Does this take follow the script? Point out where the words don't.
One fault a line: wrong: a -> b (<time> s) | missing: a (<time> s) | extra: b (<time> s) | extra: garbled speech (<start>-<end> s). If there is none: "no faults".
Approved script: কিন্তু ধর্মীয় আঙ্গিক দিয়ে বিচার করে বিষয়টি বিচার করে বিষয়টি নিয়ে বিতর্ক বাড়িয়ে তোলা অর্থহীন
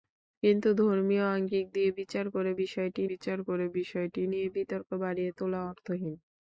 no faults